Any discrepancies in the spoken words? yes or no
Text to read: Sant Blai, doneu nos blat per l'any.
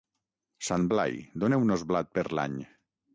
no